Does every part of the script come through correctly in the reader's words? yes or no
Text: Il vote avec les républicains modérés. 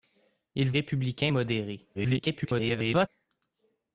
no